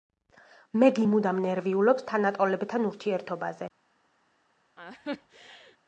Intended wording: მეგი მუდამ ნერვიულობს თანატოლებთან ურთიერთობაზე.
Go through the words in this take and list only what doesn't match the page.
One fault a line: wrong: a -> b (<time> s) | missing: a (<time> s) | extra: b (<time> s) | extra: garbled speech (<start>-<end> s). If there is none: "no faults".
no faults